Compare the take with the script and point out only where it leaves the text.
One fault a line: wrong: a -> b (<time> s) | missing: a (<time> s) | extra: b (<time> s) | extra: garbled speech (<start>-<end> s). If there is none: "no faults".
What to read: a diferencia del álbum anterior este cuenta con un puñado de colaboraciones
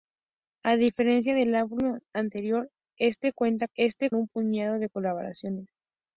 wrong: con -> este (3.7 s)